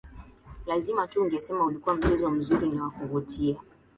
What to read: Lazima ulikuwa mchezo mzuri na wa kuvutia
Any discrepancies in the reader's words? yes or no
yes